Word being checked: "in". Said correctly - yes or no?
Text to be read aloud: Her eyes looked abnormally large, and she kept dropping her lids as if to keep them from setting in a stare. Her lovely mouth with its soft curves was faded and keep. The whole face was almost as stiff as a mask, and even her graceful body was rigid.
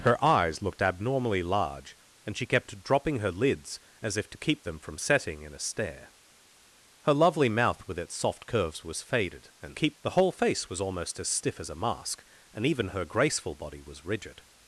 yes